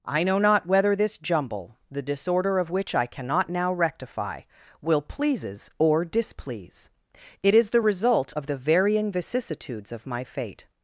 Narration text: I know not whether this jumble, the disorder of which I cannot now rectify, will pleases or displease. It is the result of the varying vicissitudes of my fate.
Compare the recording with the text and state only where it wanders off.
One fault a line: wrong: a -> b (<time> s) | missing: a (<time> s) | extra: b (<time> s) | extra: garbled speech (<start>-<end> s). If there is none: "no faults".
no faults